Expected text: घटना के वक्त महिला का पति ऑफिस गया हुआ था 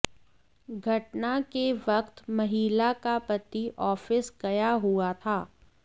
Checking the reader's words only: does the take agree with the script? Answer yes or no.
yes